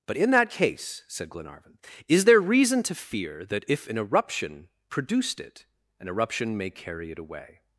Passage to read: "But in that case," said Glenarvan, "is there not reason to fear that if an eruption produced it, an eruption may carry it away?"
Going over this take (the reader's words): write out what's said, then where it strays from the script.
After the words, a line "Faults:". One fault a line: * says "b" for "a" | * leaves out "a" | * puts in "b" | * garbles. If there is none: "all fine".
"But in that case," said Glenarvan, "is there reason to fear that if an eruption produced it, an eruption may carry it away?"
Faults:
* leaves out "not"